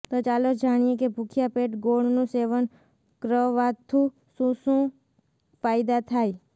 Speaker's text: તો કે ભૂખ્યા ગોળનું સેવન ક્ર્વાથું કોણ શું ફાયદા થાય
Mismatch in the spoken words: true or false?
true